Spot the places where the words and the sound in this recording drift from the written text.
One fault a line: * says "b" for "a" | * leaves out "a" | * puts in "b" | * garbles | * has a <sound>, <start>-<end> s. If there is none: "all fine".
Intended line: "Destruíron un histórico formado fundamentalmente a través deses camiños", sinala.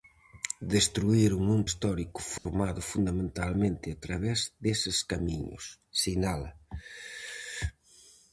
* has a dropout, 2.4-2.5 s